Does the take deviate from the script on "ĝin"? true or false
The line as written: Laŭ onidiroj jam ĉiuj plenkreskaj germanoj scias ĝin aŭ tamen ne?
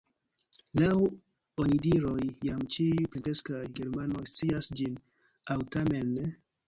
false